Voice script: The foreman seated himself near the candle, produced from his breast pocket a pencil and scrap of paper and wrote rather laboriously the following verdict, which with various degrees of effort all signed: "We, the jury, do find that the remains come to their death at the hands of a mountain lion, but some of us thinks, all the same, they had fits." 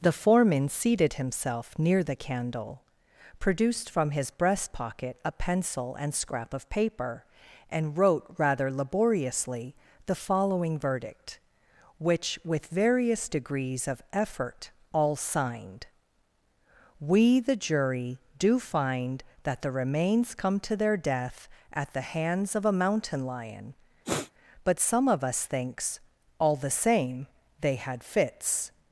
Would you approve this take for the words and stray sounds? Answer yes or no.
no